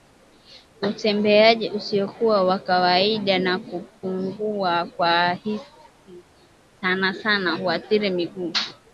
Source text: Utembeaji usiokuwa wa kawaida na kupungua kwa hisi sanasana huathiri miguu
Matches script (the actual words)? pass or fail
pass